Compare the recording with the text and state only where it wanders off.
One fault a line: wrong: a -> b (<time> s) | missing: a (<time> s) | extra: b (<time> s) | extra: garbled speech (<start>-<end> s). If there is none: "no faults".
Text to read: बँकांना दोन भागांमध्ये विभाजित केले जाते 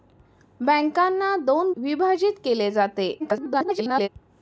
missing: भागांमध्ये (1.7 s)
extra: garbled speech (3.2-4.1 s)